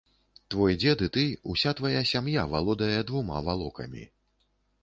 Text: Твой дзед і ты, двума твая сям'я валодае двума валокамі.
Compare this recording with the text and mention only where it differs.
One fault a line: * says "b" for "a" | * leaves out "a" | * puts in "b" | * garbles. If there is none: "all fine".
* says "уся" for "двума"